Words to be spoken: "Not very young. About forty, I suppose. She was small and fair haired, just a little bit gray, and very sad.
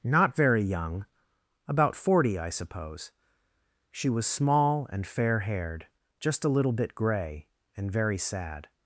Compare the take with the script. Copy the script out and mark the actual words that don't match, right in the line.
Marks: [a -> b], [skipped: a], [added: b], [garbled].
"Not very young. About forty, I suppose. She was small and fair haired, just a little bit gray, and very sad.